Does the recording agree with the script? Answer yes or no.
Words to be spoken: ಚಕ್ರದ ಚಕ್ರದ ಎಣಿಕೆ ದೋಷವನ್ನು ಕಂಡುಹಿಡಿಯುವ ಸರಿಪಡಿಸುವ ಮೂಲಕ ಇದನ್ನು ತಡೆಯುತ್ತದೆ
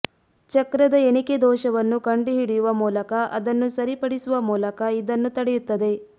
no